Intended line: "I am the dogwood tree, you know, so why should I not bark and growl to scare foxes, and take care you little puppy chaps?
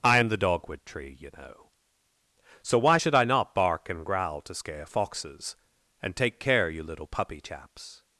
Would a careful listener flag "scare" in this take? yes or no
no